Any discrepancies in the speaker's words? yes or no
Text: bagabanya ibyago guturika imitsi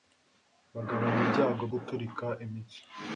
no